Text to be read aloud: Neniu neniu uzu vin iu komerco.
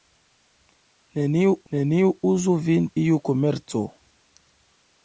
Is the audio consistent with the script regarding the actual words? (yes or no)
yes